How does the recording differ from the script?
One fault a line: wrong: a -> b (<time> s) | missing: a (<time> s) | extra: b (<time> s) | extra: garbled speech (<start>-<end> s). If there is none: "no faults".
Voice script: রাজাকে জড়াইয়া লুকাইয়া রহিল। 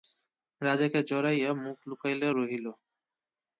extra: মুখ (1.6 s)